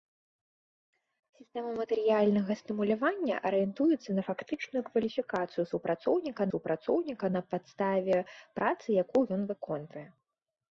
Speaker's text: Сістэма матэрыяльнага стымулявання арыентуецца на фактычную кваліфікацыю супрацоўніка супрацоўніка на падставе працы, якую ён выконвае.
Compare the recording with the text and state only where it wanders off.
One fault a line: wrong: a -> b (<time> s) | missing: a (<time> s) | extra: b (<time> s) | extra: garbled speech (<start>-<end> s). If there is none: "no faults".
no faults